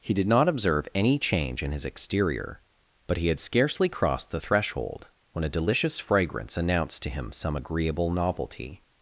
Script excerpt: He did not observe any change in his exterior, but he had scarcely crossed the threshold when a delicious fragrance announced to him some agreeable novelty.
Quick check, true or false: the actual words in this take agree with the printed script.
true